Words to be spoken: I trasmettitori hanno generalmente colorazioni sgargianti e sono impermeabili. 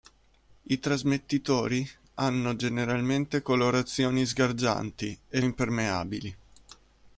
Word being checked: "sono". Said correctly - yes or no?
no